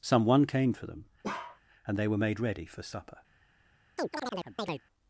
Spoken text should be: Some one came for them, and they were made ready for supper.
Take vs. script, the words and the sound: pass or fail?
fail